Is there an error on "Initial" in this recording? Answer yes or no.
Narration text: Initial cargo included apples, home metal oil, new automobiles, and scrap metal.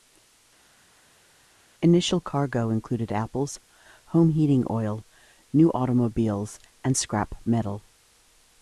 no